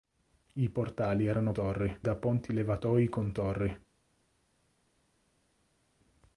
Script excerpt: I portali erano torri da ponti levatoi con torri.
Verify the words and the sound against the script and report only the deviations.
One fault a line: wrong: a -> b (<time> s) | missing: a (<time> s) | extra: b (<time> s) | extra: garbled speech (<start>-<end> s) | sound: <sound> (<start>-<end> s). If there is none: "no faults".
no faults